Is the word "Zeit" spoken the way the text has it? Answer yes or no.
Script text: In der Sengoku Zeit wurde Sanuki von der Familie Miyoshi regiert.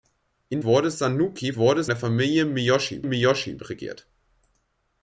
no